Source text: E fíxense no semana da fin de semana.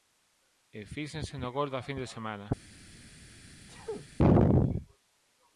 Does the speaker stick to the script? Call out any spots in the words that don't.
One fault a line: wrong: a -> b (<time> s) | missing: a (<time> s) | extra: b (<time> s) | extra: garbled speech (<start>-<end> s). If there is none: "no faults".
wrong: semana -> gol (1.6 s)